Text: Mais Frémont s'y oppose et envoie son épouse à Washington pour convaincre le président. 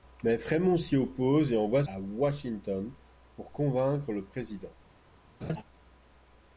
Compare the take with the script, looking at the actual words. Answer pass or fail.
fail